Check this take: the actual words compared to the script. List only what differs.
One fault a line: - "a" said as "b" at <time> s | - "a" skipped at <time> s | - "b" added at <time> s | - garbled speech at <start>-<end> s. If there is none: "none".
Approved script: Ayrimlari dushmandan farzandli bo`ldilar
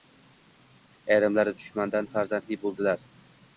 none